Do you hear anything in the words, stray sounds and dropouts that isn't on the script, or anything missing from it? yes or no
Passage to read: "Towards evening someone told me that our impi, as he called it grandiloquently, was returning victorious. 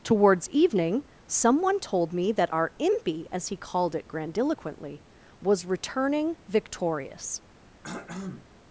yes